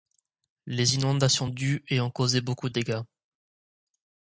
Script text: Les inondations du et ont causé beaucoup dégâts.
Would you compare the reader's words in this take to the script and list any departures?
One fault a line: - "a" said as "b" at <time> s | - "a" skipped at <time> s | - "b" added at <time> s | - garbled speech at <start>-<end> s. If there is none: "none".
none